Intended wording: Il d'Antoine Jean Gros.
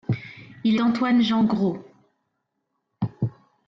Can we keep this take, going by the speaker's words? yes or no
yes